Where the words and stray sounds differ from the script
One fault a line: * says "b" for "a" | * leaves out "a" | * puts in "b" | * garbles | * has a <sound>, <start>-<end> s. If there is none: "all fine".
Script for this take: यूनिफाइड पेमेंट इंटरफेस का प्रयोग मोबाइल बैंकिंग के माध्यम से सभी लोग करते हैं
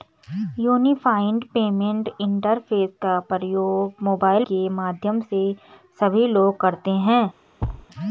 * leaves out "बैंकिंग"
* has a thud, 7.6-7.9 s